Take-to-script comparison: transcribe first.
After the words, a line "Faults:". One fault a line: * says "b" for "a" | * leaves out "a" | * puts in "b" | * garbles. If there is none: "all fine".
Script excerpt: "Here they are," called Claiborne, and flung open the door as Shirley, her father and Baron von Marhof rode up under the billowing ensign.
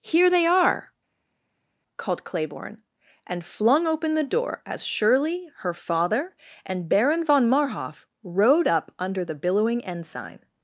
"Here they are," called Claiborne, and flung open the door as Shirley, her father and Baron von Marhof rode up under the billowing ensign.
Faults:
all fine